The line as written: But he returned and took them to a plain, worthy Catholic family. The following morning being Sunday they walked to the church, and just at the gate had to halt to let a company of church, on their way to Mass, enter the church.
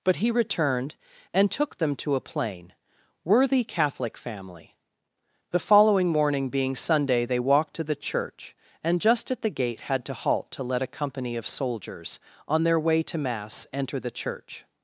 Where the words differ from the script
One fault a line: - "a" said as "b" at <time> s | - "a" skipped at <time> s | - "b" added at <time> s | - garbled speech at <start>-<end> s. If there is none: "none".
- "church" said as "soldiers" at 11.5 s